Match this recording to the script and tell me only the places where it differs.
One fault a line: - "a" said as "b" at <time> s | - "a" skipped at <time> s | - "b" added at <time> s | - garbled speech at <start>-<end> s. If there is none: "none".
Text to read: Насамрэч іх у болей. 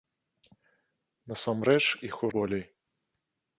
none